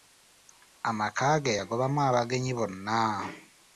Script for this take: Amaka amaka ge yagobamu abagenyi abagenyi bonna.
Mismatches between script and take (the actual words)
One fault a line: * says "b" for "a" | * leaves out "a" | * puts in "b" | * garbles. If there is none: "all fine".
* leaves out "amaka"
* leaves out "abagenyi"